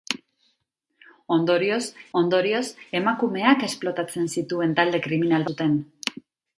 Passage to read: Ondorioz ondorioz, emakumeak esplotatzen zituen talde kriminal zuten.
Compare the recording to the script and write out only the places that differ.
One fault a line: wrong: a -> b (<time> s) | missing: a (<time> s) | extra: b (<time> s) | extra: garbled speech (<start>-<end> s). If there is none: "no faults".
no faults